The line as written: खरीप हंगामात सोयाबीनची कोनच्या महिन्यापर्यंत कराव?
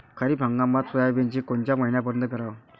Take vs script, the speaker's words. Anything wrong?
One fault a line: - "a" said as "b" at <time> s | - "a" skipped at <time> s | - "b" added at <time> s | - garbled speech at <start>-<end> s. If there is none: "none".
none